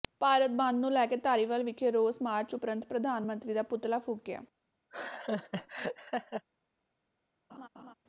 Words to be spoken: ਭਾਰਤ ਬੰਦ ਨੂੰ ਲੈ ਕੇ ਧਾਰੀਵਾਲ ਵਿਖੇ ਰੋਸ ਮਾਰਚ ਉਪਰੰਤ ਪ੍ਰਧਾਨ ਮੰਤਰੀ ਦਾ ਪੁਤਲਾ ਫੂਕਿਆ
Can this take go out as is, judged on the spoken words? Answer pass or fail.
pass